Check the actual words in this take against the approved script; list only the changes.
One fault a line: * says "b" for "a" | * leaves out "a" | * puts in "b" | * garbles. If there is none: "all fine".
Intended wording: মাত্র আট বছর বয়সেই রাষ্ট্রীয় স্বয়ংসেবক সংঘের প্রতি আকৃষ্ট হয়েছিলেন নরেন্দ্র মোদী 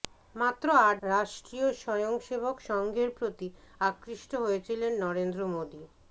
* leaves out "বছর বয়সেই"